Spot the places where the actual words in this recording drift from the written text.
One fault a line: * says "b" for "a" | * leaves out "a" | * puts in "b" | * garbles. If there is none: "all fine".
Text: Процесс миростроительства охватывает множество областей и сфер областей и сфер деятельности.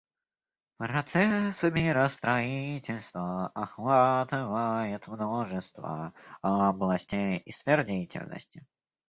* leaves out "областей и сфер"